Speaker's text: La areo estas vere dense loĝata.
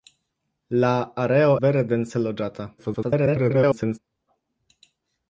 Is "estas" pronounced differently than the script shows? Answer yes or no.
yes